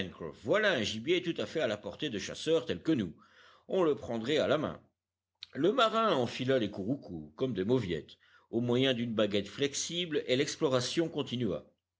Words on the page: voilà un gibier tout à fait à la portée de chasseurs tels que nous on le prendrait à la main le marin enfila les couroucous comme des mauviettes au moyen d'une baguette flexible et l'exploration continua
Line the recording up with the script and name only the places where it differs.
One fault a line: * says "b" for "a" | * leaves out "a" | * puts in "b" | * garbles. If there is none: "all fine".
all fine